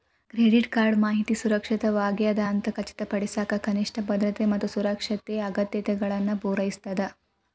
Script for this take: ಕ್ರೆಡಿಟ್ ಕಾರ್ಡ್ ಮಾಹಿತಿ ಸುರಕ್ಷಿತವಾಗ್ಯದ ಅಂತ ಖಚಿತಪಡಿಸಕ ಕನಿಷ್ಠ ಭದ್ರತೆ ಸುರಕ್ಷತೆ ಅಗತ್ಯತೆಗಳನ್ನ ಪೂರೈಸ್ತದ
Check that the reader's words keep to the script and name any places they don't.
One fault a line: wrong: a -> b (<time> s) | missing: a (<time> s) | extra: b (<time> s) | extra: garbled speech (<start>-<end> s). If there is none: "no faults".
extra: ಮತ್ತ (4.4 s)